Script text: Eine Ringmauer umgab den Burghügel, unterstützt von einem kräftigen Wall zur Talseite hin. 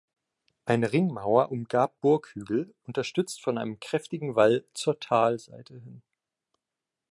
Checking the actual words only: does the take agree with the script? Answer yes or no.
no